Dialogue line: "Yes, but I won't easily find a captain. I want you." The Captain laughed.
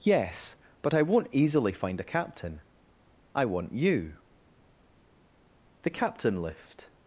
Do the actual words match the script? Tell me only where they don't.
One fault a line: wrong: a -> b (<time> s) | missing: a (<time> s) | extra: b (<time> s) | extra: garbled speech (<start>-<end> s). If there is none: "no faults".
wrong: laughed -> lift (6.4 s)